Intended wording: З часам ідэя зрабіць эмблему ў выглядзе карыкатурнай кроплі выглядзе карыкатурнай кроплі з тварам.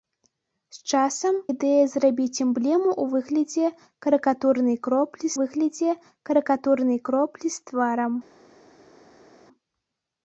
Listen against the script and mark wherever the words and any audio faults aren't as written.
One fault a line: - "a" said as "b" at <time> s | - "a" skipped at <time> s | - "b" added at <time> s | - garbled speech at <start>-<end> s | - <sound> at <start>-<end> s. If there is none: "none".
none